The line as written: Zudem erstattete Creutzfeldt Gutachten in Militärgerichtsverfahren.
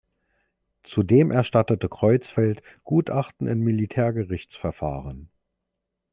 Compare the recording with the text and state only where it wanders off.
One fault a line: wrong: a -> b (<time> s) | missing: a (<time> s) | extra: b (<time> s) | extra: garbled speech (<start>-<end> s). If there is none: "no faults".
no faults